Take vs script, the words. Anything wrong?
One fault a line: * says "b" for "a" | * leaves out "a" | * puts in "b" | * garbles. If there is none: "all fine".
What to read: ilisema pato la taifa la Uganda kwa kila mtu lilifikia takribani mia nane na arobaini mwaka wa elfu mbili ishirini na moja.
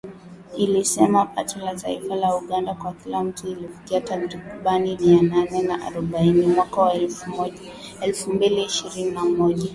all fine